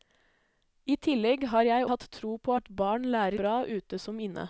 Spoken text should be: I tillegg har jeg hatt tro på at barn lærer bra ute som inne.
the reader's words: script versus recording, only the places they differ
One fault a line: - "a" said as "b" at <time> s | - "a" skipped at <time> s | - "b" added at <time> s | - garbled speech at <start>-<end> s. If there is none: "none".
none